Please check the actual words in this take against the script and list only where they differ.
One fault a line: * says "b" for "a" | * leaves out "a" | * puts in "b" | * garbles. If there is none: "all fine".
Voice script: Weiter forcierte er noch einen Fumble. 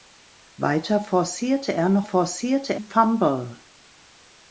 * says "forcierte" for "einen"